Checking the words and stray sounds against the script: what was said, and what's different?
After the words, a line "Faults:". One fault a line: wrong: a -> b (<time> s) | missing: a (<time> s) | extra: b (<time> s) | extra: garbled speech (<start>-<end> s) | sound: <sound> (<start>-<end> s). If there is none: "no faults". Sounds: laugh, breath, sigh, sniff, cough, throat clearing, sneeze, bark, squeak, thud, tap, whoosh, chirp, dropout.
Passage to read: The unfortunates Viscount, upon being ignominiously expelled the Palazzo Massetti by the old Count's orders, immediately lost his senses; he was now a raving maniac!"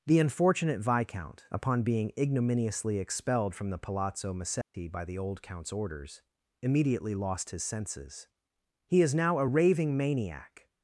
The unfortunate Viscount, upon being ignominiously expelled from the Palazzo Massetti by the old Count's orders, immediately lost his senses; he is now a raving maniac!"
Faults:
wrong: unfortunates -> unfortunate (0.2 s)
extra: from (3.5 s)
sound: dropout (4.6-4.7 s)
wrong: was -> is (9.0 s)